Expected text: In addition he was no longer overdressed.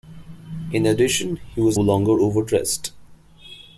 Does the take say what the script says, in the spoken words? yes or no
no